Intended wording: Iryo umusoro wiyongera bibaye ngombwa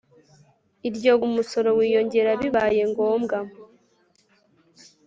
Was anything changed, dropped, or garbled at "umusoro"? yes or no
no